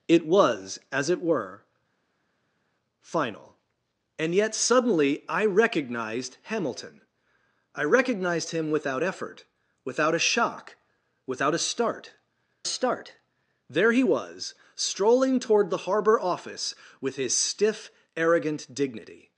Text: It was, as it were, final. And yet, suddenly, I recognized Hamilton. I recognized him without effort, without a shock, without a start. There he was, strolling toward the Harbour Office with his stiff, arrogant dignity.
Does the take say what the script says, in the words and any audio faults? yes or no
no